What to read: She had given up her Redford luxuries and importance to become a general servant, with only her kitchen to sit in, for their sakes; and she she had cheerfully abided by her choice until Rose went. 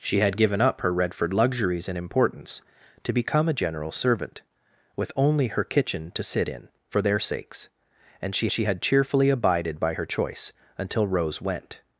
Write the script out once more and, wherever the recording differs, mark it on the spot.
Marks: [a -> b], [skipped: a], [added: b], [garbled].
She had given up her Redford luxuries and importance to become a general servant, with only her kitchen to sit in, for their sakes; and she she had cheerfully abided by her choice until Rose went.